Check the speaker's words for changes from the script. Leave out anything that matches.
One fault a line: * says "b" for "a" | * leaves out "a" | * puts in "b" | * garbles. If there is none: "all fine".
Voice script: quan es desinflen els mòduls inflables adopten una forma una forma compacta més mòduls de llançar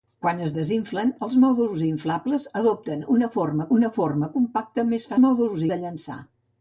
all fine